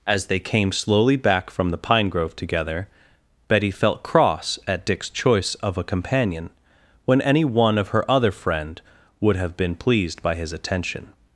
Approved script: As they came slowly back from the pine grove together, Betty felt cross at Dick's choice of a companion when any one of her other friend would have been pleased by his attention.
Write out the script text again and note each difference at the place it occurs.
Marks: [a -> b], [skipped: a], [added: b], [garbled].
As they came slowly back from the pine grove together, Betty felt cross at Dick's choice of a companion when any one of her other friend would have been pleased by his attention.